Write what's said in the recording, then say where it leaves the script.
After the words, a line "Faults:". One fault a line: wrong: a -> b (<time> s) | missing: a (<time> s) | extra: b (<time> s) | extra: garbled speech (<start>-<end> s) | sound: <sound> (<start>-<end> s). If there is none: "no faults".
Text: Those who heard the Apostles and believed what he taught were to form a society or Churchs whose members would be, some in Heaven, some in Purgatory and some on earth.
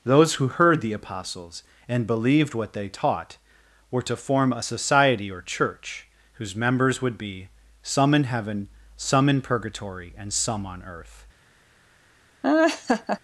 Those who heard the Apostles and believed what they taught were to form a society or Church whose members would be, some in Heaven, some in Purgatory and some on earth.
Faults:
wrong: he -> they (2.7 s)
wrong: Churchs -> Church (5.4 s)
sound: laugh (12.4-13.2 s)